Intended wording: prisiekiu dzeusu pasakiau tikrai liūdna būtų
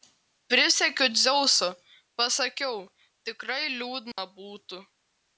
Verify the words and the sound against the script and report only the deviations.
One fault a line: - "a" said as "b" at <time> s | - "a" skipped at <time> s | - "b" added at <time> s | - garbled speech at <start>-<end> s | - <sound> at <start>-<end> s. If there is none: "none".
- dropout at 4.1-4.2 s